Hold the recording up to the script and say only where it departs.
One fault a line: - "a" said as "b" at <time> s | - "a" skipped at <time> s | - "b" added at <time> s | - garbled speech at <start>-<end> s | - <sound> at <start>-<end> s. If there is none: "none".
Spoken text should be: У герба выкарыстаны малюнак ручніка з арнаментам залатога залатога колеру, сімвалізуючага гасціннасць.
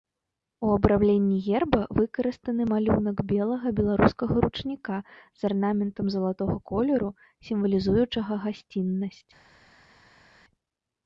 - "абрамленні" added at 0.8 s
- "белага беларускага" added at 3.3 s
- "залатога" skipped at 6.5 s